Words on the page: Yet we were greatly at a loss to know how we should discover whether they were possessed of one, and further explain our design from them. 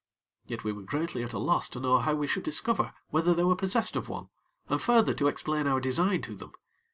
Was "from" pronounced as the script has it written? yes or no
no